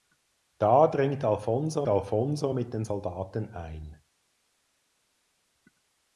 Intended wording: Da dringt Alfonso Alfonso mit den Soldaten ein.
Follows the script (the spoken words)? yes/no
yes